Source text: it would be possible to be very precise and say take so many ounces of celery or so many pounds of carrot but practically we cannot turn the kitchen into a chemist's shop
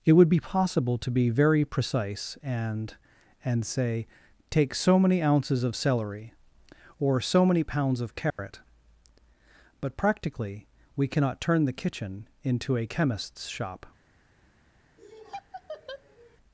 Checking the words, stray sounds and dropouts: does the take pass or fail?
fail